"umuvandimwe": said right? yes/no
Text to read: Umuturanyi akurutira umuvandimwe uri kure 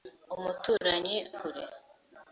no